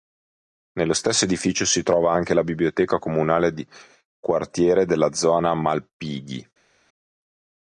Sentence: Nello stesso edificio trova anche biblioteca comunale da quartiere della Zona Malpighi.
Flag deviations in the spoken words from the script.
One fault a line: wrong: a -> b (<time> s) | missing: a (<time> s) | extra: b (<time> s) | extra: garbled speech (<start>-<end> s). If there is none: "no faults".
extra: si (1.6 s)
extra: la (2.3 s)
wrong: da -> di (3.5 s)